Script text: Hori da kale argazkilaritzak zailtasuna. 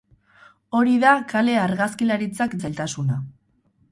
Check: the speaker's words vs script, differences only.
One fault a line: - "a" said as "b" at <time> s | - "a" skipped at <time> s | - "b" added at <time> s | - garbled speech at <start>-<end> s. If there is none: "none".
none